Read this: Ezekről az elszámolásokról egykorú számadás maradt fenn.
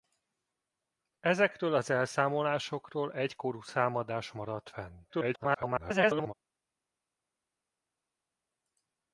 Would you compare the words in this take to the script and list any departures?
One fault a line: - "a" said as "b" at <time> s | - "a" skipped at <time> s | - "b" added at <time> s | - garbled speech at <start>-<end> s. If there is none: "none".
- garbled speech at 5.1-6.3 s